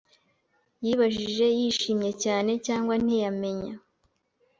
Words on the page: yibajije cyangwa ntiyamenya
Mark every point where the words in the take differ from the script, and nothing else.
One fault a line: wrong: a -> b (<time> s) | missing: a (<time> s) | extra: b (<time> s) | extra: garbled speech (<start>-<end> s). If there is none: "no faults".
extra: yishimye cyane (1.6 s)